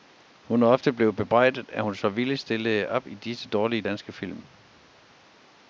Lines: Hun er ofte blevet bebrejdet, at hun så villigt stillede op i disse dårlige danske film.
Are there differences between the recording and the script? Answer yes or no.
no